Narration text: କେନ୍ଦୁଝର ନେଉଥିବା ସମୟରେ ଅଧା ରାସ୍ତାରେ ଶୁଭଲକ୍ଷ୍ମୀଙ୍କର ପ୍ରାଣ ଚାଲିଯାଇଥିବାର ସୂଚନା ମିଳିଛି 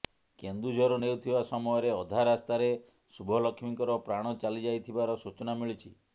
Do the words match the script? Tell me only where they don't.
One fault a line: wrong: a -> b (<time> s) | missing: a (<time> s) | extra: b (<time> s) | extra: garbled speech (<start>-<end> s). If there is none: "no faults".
no faults